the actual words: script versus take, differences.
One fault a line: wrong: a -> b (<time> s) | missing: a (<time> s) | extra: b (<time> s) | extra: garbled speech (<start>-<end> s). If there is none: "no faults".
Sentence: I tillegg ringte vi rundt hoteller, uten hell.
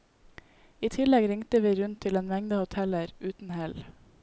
extra: til en mengde (2.1 s)